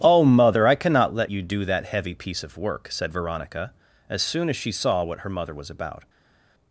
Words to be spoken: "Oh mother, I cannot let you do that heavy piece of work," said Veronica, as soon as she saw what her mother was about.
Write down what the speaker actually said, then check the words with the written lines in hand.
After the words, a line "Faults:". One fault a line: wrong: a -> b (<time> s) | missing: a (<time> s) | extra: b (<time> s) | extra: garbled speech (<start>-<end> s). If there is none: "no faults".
"Oh mother, I cannot let you do that heavy piece of work," said Veronica, as soon as she saw what her mother was about.
Faults:
no faults